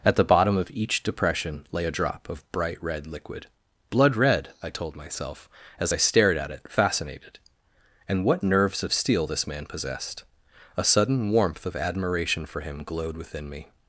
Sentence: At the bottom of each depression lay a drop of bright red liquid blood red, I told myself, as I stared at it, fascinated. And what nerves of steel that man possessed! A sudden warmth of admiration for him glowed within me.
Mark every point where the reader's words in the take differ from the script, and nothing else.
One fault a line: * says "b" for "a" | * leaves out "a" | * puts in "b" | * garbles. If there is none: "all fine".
* says "this" for "that"